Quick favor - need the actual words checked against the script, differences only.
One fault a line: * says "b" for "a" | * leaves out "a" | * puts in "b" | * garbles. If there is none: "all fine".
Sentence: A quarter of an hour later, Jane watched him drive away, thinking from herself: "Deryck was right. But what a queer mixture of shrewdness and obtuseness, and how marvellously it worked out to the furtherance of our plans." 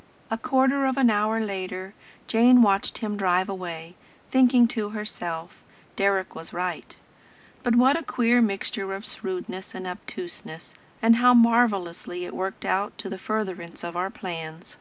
* says "to" for "from"